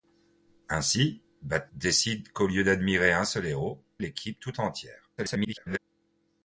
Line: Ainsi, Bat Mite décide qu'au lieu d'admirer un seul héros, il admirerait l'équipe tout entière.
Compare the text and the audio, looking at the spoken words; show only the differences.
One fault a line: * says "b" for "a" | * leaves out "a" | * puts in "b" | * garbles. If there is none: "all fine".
* leaves out "Mite"
* leaves out "il admirerait"
* garbles